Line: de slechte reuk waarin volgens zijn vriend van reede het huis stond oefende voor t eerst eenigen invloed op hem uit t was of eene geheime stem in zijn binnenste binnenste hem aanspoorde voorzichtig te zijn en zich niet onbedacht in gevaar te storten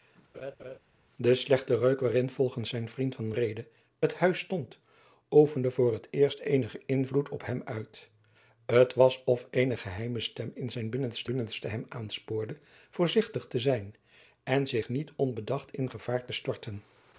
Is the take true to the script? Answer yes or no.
yes